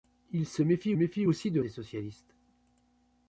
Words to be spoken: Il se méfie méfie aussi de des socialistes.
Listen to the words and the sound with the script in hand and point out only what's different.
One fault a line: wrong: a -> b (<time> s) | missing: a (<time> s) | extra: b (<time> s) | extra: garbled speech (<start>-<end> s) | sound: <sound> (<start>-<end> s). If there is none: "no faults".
no faults